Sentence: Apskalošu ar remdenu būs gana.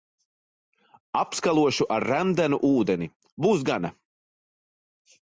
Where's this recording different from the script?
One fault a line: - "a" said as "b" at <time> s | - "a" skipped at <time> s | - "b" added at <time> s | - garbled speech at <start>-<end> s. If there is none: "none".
- "ūdeni" added at 2.7 s